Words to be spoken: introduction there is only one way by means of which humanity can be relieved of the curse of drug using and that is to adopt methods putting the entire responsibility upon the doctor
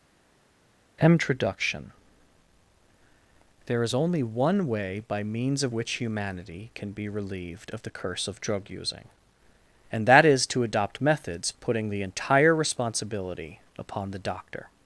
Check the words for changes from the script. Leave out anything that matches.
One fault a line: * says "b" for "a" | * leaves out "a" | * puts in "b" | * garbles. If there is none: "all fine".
all fine